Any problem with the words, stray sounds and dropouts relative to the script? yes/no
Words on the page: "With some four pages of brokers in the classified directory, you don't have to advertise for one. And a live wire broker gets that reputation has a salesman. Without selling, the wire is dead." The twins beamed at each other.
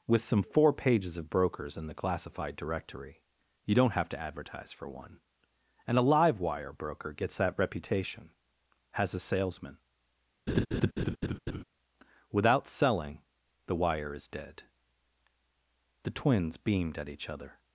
yes